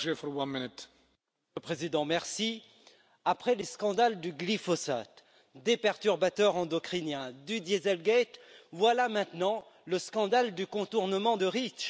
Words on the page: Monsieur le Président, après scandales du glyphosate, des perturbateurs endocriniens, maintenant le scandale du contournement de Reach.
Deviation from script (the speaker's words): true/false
true